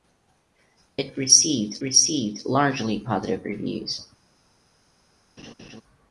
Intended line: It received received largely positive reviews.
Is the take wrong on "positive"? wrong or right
right